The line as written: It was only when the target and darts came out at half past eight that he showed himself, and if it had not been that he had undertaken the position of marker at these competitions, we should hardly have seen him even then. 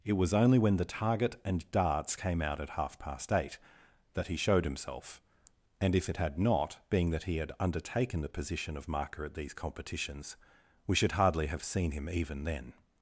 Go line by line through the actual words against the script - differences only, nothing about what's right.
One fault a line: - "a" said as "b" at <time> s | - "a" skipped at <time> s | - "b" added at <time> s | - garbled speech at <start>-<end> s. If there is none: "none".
- "been" said as "being" at 6.9 s